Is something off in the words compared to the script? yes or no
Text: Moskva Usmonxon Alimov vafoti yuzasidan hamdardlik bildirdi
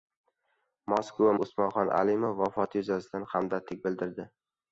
no